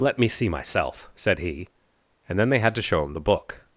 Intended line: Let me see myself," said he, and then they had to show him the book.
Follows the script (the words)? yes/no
yes